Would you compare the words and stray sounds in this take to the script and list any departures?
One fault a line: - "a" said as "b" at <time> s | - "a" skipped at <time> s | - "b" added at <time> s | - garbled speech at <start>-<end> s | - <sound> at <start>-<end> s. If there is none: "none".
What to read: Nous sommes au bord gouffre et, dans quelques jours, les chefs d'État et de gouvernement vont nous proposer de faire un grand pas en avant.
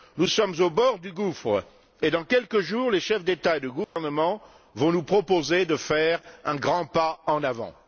- "du" added at 1.0 s
- dropout at 3.8-4.0 s